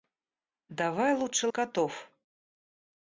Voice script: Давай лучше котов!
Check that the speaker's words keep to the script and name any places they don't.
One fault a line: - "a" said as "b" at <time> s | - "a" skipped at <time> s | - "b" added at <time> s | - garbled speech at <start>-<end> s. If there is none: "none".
none